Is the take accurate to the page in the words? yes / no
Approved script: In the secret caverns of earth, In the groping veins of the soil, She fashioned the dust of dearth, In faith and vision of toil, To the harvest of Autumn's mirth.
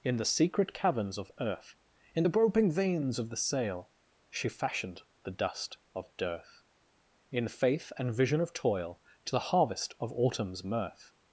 no